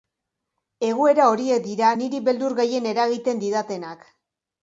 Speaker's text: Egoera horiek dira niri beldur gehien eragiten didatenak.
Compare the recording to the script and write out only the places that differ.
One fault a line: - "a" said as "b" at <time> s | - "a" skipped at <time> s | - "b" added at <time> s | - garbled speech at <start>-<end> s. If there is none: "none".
none